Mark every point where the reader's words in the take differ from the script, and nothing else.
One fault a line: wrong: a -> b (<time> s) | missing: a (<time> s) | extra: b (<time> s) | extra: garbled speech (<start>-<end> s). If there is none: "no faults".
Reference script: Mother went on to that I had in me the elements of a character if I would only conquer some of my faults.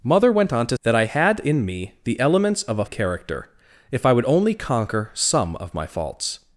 no faults